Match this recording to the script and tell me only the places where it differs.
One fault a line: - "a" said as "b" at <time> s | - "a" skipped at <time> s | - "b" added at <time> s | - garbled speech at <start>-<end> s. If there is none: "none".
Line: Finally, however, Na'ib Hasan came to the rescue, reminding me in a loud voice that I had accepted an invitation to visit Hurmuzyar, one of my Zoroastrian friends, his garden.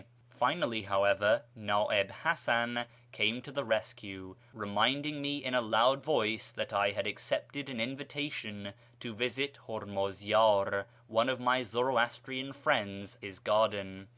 none